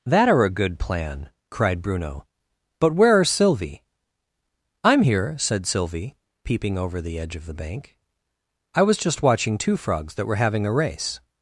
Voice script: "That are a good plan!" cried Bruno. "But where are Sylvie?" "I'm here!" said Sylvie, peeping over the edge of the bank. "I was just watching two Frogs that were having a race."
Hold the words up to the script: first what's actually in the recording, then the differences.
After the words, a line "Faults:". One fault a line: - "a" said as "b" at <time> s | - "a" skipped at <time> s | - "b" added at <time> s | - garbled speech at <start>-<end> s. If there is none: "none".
"That are a good plan!" cried Bruno. "But where are Sylvie?" "I'm here!" said Sylvie, peeping over the edge of the bank. "I was just watching two Frogs that were having a race."
Faults:
none